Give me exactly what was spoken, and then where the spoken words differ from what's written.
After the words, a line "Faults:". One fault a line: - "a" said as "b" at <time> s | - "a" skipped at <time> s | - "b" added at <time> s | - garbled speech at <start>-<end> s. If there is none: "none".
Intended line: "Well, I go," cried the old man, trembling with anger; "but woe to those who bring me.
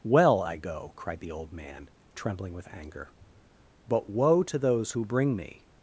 "Well, I go," cried the old man, trembling with anger; "but woe to those who bring me.
Faults:
none